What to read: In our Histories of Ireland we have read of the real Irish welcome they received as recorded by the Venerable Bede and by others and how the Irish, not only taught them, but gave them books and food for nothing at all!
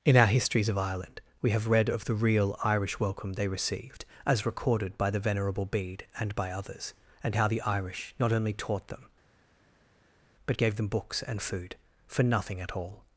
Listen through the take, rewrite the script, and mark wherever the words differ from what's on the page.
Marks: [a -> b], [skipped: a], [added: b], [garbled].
In our Histories of Ireland we have read of the real Irish welcome they received as recorded by the Venerable Bede and by others and how the Irish, not only taught them, but gave them books and food for nothing at all!